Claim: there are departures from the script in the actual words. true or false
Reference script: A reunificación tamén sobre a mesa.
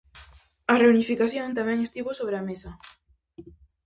true